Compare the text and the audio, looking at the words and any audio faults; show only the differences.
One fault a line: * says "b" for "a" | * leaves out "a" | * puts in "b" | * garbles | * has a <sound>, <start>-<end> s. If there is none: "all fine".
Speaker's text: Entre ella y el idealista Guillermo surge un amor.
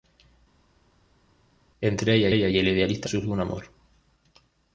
* puts in "ella"
* leaves out "Guillermo"